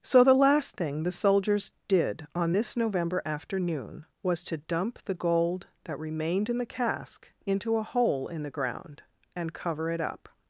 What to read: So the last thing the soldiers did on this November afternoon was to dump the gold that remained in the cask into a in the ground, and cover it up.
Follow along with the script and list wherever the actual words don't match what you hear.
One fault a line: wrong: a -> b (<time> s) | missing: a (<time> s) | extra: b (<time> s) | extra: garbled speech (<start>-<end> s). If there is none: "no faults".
extra: hole (7.8 s)